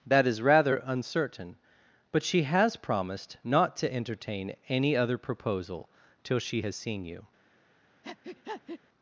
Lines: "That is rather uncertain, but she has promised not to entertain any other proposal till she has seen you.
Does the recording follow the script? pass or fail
pass